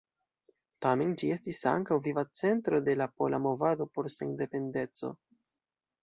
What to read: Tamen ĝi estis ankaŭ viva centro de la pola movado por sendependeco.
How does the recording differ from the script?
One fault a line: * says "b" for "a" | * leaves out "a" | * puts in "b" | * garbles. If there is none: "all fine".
all fine